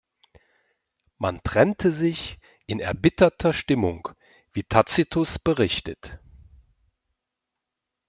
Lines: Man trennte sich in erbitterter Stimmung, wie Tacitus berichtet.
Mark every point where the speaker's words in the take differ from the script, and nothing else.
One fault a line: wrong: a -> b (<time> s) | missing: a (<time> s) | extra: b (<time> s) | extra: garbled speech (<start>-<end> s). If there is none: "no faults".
no faults